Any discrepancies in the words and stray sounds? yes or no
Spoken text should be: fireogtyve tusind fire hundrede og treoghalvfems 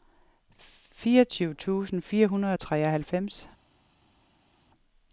no